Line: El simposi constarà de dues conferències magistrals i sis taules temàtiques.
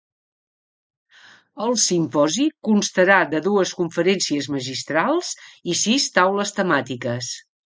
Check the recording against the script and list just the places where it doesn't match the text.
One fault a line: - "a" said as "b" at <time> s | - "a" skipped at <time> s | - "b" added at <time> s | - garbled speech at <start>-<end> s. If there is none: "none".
none